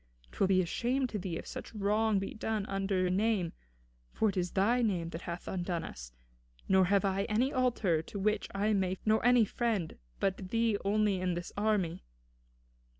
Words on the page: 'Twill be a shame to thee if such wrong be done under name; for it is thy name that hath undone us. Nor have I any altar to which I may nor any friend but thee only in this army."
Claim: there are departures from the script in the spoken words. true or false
false